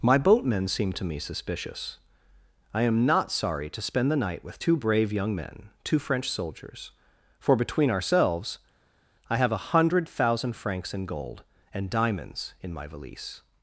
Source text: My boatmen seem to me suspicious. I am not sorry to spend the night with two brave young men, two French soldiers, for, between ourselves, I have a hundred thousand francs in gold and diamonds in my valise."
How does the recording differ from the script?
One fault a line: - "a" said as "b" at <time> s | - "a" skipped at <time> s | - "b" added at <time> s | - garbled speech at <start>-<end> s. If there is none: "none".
none